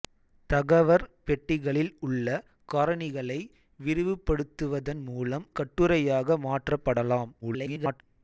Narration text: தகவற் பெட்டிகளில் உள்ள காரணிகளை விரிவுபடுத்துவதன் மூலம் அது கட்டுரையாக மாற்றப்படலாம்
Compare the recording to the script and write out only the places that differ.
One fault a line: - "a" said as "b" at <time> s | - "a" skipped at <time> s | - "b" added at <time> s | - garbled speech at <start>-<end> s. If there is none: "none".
- "அது" skipped at 5.5 s
- garbled speech at 7.4-8.0 s